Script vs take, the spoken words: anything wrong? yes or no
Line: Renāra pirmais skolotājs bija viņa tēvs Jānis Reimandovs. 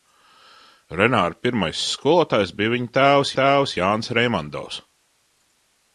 yes